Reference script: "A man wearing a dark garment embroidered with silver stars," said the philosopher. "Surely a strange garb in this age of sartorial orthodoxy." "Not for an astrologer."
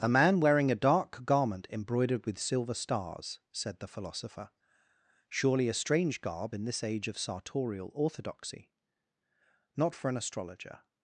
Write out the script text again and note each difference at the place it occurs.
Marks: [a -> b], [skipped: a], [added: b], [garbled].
"A man wearing a dark garment embroidered with silver stars," said the philosopher. "Surely a strange garb in this age of sartorial orthodoxy." "Not for an astrologer."